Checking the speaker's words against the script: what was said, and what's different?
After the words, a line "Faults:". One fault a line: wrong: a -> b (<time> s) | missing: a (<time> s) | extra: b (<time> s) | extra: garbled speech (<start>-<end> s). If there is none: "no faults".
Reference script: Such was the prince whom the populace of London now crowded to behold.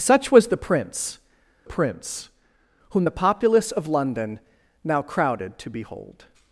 Such was the prince prince whom the populace of London now crowded to behold.
Faults:
extra: prince (1.6 s)